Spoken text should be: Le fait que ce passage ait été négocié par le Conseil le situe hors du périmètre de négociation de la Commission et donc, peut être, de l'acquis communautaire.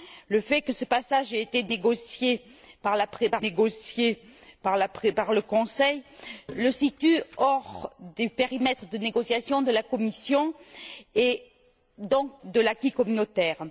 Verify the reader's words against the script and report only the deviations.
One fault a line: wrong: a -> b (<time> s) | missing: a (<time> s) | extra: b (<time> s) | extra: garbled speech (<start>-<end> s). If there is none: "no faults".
extra: négocié par (3.4 s)
missing: peut être (12.4 s)